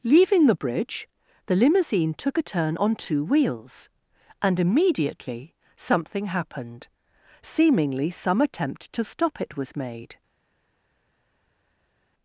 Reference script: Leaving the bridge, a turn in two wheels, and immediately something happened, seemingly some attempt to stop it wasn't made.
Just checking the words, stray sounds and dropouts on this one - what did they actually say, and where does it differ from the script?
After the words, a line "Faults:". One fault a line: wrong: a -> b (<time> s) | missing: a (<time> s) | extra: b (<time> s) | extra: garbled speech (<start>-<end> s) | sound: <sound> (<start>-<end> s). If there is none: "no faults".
Leaving the bridge, the limousine took a turn on two wheels, and immediately something happened, seemingly some attempt to stop it was made.
Faults:
extra: the limousine took (1.4 s)
wrong: in -> on (2.7 s)
wrong: wasn't -> was (9.6 s)